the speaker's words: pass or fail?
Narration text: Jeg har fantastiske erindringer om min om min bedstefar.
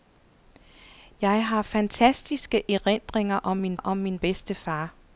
pass